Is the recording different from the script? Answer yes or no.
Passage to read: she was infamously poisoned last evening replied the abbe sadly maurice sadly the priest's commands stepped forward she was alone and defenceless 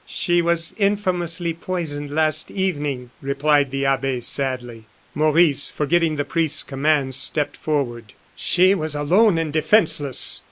yes